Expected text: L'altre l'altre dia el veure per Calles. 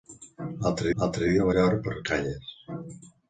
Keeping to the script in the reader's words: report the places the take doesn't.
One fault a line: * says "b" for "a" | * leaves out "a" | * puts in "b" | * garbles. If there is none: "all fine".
all fine